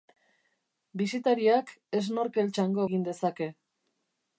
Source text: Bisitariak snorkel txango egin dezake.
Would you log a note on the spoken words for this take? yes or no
no